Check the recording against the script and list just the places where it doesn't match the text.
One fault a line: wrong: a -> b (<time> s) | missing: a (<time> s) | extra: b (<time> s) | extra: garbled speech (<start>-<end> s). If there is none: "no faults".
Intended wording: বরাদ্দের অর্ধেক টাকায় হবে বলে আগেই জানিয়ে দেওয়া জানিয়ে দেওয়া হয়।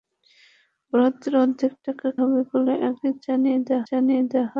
no faults